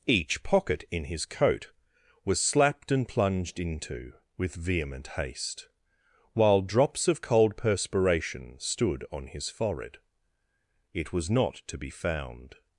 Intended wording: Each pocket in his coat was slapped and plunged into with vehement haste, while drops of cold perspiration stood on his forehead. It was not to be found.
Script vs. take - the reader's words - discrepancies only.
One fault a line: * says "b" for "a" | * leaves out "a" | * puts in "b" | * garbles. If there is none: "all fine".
all fine